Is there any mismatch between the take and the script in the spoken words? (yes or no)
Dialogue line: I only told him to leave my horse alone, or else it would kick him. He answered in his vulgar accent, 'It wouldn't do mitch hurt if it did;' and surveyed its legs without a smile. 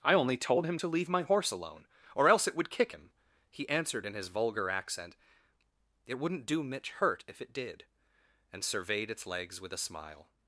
yes